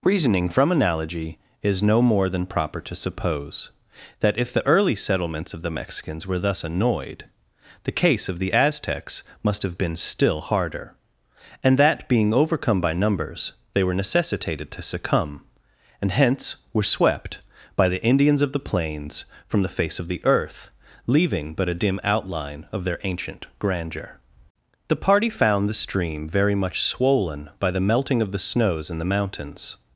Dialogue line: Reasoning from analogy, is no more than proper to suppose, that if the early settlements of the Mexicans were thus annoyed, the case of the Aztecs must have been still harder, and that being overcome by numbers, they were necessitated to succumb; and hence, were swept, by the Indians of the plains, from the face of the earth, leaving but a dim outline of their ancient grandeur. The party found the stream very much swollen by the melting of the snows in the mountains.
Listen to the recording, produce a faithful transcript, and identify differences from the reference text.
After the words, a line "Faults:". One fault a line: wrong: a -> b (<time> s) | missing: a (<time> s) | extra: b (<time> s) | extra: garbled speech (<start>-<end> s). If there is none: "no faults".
Reasoning from analogy, is no more than proper to suppose, that if the early settlements of the Mexicans were thus annoyed, the case of the Aztecs must have been still harder, and that being overcome by numbers, they were necessitated to succumb; and hence, were swept, by the Indians of the plains, from the face of the earth, leaving but a dim outline of their ancient grandeur. The party found the stream very much swollen by the melting of the snows in the mountains.
Faults:
no faults